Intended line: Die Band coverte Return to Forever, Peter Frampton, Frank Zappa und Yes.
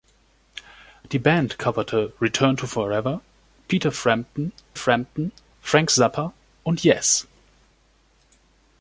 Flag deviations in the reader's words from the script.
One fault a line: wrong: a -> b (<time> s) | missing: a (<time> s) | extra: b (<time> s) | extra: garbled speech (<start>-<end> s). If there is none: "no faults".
extra: Frampton (4.7 s)